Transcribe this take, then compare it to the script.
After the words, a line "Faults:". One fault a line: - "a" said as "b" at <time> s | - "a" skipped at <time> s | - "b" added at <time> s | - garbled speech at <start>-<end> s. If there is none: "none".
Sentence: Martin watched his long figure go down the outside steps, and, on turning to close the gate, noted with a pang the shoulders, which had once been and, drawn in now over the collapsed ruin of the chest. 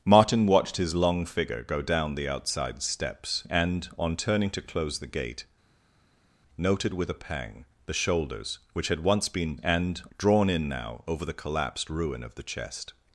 Martin watched his long figure go down the outside steps, and, on turning to close the gate, noted with a pang the shoulders, which had once been and, drawn in now over the collapsed ruin of the chest.
Faults:
none